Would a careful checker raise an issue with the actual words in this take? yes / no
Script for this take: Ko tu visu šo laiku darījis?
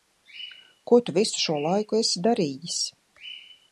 yes